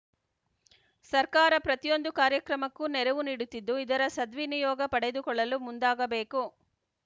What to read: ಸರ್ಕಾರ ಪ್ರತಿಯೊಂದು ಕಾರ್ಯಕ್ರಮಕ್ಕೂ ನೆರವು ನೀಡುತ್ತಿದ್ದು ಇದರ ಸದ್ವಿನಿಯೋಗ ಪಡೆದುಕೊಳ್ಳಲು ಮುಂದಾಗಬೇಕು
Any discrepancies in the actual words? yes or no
no